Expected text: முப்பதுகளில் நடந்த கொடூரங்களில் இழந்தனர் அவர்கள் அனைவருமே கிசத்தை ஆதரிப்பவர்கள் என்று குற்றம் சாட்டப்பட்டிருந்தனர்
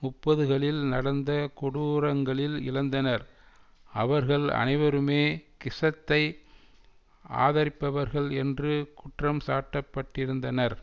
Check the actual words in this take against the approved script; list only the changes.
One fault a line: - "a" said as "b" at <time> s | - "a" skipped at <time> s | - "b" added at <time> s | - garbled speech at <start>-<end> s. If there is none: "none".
none